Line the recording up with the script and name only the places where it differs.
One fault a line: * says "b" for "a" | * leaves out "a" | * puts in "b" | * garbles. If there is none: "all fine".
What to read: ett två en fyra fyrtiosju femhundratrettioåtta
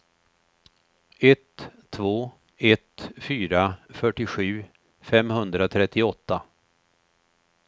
* says "ett" for "en"